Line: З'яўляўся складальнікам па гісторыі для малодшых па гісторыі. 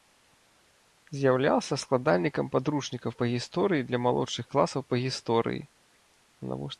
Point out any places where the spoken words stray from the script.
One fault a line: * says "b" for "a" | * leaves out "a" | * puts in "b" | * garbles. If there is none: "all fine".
* puts in "падручнікаў"
* puts in "класаў"